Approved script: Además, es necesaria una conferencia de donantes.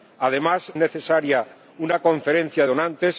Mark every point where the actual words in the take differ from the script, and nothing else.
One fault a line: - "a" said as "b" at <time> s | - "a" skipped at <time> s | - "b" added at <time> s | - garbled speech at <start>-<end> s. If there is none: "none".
- "es" skipped at 0.7 s
- "de" skipped at 2.7 s